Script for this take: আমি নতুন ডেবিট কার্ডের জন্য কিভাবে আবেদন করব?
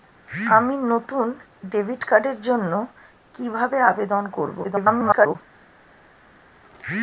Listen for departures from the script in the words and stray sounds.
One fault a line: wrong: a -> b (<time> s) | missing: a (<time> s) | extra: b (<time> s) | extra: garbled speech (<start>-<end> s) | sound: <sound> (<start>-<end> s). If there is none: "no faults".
extra: garbled speech (4.6-5.4 s)